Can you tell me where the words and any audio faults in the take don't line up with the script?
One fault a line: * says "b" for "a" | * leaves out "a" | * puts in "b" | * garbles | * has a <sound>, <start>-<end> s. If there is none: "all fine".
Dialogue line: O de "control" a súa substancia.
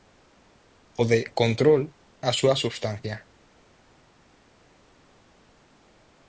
all fine